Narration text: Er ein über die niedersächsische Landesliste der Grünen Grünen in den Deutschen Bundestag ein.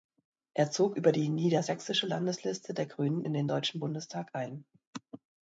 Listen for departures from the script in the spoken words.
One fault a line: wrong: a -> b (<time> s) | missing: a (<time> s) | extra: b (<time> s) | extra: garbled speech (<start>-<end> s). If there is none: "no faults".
wrong: ein -> zog (0.7 s)
missing: Grünen (3.2 s)